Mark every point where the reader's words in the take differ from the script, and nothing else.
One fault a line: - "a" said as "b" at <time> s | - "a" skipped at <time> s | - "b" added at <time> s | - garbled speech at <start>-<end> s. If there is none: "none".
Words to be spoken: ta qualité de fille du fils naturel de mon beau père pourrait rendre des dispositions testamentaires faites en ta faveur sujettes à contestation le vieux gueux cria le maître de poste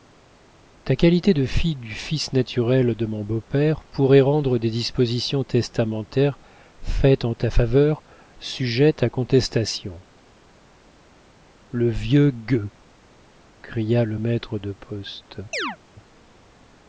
none